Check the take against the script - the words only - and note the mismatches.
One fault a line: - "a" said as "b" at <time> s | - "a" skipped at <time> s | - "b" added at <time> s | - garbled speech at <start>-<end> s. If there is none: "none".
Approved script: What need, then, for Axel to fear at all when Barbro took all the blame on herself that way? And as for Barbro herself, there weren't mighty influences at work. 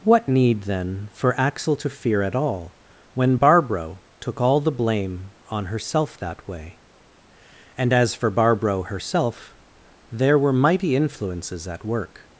- "weren't" said as "were" at 10.4 s